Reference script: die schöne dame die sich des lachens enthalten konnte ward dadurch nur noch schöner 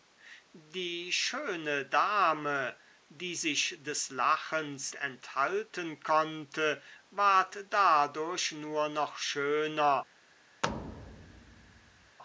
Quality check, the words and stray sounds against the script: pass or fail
fail